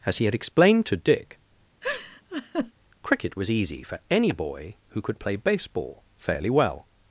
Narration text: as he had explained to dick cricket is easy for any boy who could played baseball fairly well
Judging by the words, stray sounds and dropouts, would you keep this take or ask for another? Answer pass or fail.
fail